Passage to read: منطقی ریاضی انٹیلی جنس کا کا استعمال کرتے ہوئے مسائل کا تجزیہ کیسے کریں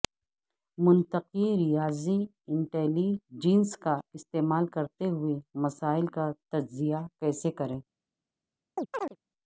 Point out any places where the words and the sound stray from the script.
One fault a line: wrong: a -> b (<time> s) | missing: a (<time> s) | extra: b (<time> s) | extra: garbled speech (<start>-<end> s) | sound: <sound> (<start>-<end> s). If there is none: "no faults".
missing: کا (4.0 s)
sound: chirp (8.8-9.2 s)